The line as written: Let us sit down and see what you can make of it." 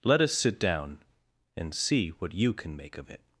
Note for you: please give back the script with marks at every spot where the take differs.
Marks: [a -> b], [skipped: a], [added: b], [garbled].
Let us sit down and see what you can make of it."